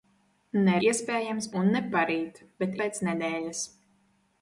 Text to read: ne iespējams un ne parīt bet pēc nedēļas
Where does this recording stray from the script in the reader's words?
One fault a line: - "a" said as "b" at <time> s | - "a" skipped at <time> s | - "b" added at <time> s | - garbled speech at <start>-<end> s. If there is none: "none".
none